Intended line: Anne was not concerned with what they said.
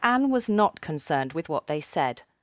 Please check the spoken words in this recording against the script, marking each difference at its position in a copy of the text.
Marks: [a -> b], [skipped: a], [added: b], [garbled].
Anne was not concerned with what they said.